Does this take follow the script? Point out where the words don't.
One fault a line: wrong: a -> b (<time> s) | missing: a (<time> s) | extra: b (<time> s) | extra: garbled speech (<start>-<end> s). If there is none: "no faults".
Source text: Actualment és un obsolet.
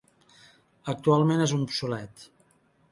no faults